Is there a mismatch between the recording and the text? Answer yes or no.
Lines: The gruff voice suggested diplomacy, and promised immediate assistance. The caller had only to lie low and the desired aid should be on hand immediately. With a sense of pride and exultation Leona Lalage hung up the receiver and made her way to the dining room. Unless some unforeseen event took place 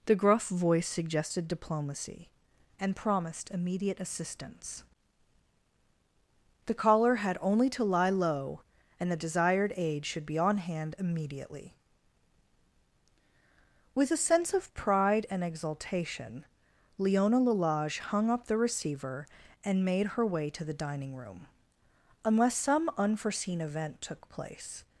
no